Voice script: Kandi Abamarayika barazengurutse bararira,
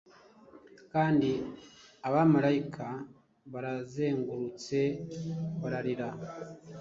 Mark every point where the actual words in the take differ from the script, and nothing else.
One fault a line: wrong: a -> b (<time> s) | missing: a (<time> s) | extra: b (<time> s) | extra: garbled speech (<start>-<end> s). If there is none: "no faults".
no faults